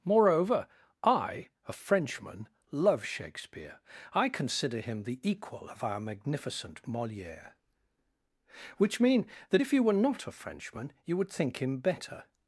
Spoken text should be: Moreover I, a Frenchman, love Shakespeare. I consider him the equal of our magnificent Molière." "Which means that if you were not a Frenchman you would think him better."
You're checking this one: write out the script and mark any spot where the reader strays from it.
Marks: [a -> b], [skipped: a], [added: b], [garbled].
Moreover I, a Frenchman, love Shakespeare. I consider him the equal of our magnificent Molière." "Which [means -> mean] that if you were not a Frenchman you would think him better."